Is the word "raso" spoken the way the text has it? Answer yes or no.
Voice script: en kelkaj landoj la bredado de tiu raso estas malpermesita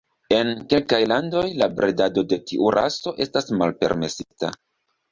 yes